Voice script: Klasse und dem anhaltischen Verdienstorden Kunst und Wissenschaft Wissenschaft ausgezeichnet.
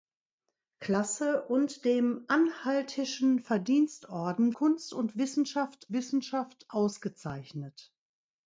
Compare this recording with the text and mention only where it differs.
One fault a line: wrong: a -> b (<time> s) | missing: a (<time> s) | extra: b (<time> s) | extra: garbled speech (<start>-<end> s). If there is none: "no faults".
no faults